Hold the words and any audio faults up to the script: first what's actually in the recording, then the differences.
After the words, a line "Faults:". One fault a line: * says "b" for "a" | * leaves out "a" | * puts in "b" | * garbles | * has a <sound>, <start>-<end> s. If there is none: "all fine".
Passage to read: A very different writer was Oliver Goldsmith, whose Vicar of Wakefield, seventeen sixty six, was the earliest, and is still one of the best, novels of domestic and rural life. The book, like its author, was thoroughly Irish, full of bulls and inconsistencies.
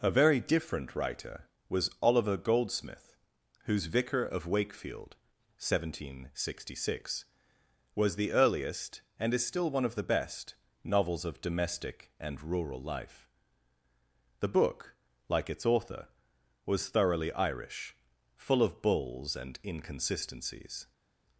A very different writer was Oliver Goldsmith, whose Vicar of Wakefield, seventeen sixty six, was the earliest, and is still one of the best, novels of domestic and rural life. The book, like its author, was thoroughly Irish, full of bulls and inconsistencies.
Faults:
all fine